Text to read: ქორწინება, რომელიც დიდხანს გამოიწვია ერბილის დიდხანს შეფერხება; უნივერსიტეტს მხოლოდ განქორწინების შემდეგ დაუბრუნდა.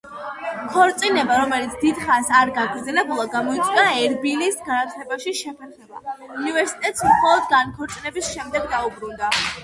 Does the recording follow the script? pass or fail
fail